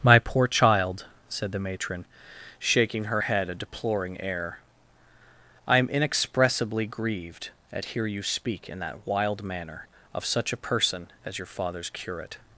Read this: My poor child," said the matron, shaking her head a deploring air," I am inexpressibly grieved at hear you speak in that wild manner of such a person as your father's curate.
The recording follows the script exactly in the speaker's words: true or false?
true